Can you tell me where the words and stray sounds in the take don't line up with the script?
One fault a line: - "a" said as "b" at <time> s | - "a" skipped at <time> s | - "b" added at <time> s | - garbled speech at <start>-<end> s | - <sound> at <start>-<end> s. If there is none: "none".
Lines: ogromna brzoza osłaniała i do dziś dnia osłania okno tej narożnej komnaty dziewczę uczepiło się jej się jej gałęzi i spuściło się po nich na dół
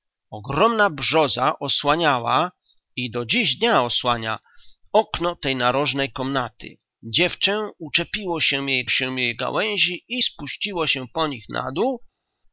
none